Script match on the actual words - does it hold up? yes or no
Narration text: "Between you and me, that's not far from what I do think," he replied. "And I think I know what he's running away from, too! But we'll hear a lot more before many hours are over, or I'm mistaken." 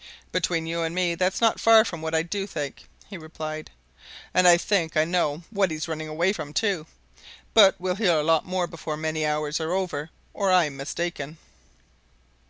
yes